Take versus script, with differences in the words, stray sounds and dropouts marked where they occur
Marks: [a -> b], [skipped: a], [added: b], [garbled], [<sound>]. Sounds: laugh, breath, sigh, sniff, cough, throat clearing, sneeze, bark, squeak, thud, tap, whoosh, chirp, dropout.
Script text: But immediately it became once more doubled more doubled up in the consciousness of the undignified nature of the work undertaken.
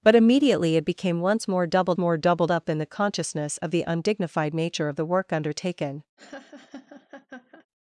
But immediately it became once more doubled more doubled up in the consciousness of the undignified nature of the work undertaken. [laugh]